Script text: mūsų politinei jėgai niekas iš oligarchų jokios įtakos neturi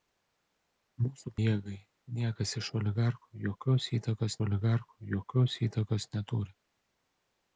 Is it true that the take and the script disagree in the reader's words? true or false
true